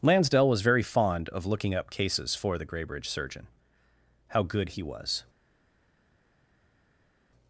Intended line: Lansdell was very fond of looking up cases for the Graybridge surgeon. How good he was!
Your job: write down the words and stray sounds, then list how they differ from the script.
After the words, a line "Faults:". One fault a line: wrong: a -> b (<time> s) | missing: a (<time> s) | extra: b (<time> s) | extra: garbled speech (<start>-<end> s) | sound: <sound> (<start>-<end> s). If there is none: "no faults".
Lansdell was very fond of looking up cases for the Graybridge surgeon. How good he was!
Faults:
no faults